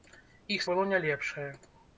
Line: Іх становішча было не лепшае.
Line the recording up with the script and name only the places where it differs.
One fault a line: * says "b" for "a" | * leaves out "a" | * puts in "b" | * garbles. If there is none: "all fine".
* leaves out "становішча"